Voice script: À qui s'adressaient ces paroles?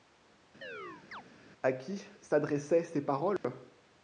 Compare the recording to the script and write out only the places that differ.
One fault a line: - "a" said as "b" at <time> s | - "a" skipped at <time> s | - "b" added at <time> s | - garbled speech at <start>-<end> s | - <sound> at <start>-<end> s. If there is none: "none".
- chirp at 0.6-1.2 s
- dropout at 3.4-3.4 s